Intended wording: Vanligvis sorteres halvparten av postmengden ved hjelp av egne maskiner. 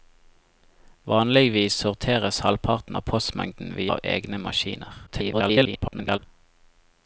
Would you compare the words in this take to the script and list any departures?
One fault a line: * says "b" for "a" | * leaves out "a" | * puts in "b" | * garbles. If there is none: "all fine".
* leaves out "hjelp"
* garbles